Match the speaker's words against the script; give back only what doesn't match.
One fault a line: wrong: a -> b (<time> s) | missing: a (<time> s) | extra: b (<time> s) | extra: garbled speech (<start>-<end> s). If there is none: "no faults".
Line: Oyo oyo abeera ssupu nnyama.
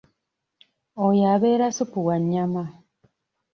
missing: oyo (1.2 s)
extra: wa (2.1 s)